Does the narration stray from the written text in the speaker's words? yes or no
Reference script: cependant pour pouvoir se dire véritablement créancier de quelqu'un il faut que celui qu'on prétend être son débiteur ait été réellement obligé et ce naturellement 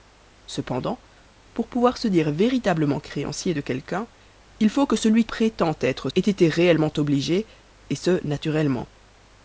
yes